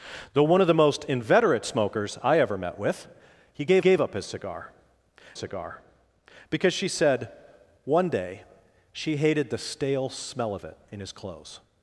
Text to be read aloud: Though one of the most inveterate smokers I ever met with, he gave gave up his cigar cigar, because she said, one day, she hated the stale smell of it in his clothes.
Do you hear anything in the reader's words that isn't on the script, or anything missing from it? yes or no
no